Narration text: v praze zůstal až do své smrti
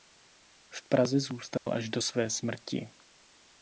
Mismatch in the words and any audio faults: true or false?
true